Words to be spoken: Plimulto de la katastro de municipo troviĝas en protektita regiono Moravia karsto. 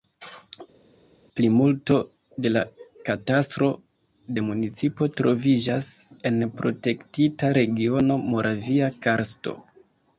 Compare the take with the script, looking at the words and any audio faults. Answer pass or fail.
pass